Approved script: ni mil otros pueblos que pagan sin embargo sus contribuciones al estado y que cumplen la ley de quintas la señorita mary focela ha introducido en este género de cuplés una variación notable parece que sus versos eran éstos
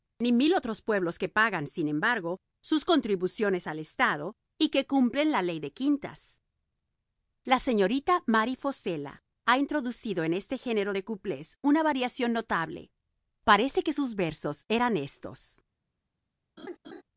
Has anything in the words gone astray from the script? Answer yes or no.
no